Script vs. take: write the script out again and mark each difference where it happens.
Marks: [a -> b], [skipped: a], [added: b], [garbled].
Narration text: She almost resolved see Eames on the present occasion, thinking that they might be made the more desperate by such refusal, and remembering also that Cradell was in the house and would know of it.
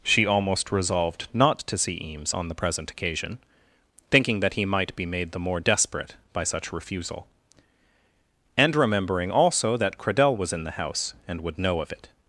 She almost resolved [added: not to] see Eames on the present occasion, thinking that [they -> he] might be made the more desperate by such refusal, and remembering also that Cradell was in the house and would know of it.